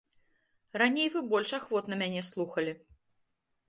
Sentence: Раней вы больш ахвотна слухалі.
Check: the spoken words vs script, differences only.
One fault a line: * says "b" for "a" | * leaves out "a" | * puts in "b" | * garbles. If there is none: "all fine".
* puts in "мяне"